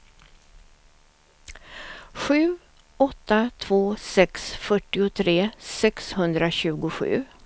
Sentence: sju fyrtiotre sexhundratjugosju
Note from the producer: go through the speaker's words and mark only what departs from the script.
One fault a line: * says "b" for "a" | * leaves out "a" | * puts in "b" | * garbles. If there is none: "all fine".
* puts in "åtta två sex"